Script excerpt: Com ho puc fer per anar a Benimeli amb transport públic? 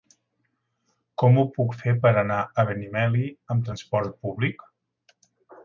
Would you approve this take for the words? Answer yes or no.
yes